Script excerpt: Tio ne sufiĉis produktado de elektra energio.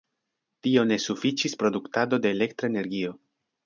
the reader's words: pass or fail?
pass